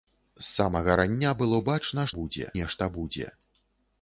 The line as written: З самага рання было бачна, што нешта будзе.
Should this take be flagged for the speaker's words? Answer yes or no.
yes